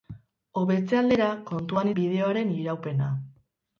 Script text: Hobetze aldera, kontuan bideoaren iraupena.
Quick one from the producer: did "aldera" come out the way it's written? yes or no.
yes